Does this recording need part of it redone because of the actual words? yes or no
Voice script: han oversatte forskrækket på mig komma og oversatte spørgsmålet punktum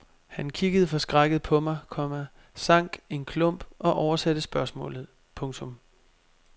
yes